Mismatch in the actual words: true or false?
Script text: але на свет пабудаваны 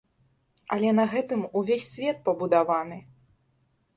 true